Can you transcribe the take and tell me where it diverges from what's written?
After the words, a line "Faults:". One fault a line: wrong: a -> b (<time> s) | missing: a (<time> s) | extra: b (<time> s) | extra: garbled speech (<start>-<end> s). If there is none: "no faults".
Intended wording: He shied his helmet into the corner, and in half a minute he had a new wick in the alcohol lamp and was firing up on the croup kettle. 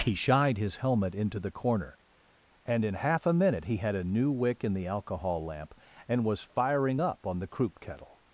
He shied his helmet into the corner, and in half a minute he had a new wick in the alcohol lamp and was firing up on the croup kettle.
Faults:
no faults